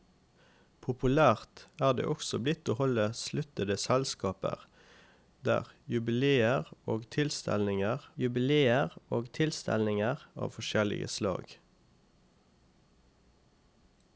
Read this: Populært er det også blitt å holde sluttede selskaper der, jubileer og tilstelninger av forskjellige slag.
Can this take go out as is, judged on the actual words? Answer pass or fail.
fail